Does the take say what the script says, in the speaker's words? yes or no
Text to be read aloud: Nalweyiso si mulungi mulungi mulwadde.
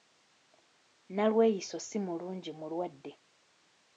no